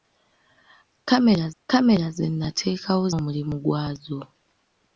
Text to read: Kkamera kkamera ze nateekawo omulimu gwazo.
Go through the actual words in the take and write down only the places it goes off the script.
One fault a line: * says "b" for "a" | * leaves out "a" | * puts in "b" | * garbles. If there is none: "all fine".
all fine